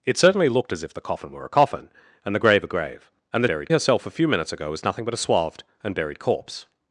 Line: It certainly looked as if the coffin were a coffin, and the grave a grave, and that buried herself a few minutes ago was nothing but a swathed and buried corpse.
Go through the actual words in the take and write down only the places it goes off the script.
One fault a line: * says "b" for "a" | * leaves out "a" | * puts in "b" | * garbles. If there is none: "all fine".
all fine